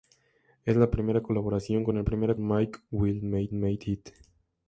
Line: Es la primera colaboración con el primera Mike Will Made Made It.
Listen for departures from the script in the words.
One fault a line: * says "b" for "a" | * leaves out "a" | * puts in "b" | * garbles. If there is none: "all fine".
all fine